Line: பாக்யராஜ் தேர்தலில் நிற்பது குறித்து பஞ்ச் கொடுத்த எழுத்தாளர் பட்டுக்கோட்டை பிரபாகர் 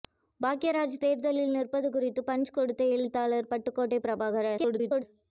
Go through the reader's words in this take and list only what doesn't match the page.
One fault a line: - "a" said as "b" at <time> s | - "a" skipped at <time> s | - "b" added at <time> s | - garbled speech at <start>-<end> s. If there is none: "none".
- garbled speech at 4.6-5.0 s